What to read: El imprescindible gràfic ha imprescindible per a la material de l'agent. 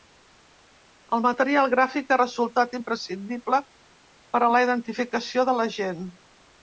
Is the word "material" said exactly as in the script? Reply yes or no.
no